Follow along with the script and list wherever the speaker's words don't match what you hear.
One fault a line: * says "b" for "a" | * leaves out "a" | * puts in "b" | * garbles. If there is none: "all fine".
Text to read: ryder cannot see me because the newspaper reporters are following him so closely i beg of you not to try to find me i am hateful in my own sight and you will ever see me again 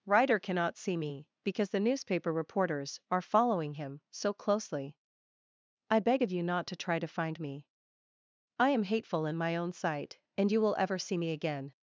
all fine